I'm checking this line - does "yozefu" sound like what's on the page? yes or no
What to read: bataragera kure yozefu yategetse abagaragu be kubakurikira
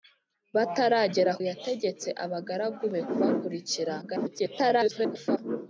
no